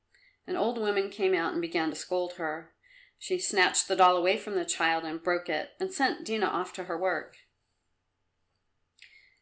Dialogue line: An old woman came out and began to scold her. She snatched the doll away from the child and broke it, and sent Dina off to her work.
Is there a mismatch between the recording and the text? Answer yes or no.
no